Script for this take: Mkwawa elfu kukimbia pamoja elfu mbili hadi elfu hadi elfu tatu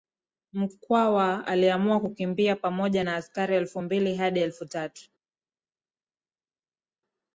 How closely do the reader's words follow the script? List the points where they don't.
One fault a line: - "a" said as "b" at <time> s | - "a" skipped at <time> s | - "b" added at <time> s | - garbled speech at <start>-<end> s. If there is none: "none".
- "elfu" said as "aliamua" at 1.5 s
- "na askari" added at 3.0 s
- "hadi elfu" skipped at 4.7 s